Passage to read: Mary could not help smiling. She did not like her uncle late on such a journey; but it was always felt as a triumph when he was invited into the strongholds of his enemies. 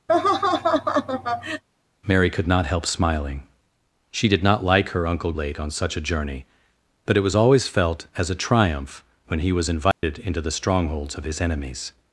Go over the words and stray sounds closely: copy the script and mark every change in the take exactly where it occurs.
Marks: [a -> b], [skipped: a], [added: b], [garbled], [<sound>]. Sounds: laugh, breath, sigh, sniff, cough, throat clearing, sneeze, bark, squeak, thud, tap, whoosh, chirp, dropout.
[laugh] Mary could not help smiling. She did not like her uncle late on such a journey; but it was always felt as a triumph when he was invited [dropout] into the strongholds of his enemies.